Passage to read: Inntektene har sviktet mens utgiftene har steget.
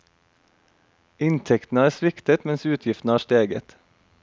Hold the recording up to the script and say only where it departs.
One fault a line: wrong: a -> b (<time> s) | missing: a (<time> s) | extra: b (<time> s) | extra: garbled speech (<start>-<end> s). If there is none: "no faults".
no faults